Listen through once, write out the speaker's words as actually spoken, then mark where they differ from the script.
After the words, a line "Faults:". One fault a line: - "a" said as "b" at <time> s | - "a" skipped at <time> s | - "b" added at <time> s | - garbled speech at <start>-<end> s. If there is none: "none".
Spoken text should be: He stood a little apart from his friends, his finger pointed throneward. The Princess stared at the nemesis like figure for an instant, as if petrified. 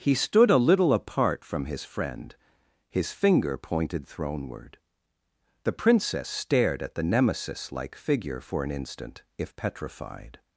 He stood a little apart from his friend, his finger pointed throneward. The Princess stared at the nemesis like figure for an instant, if petrified.
Faults:
- "friends" said as "friend" at 1.8 s
- "as" skipped at 9.2 s